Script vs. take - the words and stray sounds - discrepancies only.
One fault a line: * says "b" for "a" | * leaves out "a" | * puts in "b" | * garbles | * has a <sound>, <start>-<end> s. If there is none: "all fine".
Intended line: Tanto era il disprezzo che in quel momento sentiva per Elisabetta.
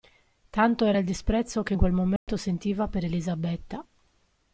* has a dropout, 2.2-2.3 s